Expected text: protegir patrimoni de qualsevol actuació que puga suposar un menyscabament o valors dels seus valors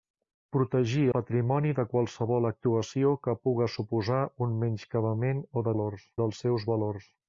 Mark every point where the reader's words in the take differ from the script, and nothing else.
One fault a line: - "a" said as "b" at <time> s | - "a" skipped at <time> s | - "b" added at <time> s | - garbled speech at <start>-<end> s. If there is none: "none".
none